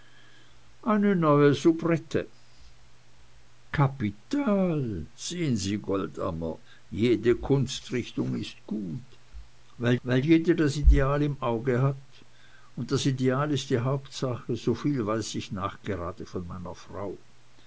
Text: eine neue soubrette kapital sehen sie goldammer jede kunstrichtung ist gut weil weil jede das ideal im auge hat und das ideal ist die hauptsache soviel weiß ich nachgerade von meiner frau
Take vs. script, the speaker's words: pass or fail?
pass